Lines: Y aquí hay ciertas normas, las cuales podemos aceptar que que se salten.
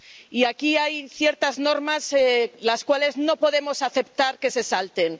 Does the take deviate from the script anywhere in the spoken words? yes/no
yes